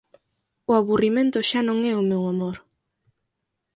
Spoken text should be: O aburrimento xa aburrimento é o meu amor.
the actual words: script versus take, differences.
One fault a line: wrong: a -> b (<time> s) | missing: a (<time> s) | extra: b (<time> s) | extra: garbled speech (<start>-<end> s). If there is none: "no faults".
wrong: aburrimento -> non (1.7 s)